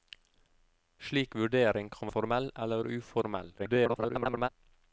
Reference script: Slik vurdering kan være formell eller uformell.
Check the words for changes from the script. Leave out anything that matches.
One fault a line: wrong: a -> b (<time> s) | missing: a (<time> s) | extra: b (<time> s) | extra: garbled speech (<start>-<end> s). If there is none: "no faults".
missing: være (2.1 s)
extra: garbled speech (3.6-4.5 s)